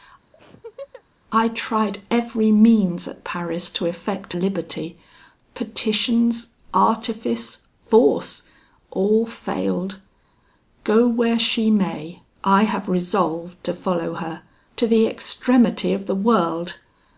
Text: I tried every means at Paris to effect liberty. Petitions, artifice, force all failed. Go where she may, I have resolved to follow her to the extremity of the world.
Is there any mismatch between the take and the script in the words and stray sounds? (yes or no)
yes